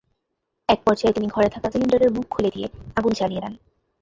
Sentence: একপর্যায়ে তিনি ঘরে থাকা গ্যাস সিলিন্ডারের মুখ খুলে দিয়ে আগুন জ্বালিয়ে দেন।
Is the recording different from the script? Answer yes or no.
yes